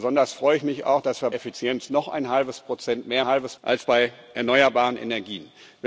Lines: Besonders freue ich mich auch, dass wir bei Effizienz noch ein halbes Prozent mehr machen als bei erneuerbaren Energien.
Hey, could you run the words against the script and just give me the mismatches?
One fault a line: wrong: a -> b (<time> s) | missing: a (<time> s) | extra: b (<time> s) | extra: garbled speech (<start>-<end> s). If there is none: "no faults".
missing: bei (1.3 s)
wrong: machen -> halbes (3.3 s)